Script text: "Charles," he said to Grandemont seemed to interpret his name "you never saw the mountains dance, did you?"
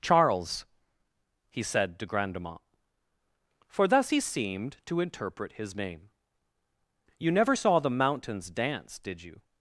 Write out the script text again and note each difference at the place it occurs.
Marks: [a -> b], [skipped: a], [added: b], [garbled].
"Charles," he said to Grandemont [added: for thus he] seemed to interpret his name "you never saw the mountains dance, did you?"